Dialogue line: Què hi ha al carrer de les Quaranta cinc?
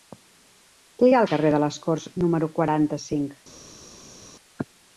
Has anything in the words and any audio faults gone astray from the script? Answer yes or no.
yes